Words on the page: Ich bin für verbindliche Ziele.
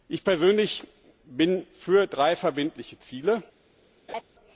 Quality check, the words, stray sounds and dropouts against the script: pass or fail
fail